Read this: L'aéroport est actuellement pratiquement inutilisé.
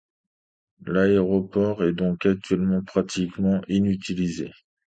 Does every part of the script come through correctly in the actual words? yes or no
no